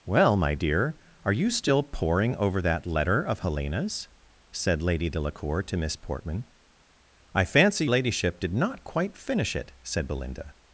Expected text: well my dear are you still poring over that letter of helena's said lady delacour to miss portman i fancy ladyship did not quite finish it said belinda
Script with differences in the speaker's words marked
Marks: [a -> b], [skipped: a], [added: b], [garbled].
well my dear are you still poring over that letter of helena's said lady delacour to miss portman i fancy ladyship did not quite finish it said belinda